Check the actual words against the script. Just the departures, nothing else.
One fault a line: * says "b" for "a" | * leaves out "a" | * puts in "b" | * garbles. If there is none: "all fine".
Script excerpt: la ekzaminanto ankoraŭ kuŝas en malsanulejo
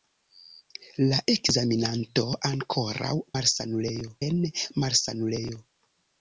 * says "malsanulejo" for "kuŝas"